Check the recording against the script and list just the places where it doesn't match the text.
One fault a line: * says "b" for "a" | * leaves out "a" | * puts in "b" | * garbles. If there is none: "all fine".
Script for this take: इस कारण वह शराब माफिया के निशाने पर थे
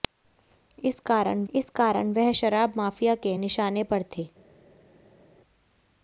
* puts in "इस कारण"